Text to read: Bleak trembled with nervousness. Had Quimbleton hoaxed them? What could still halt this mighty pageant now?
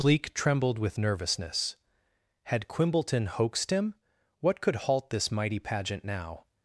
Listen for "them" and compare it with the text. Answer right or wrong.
wrong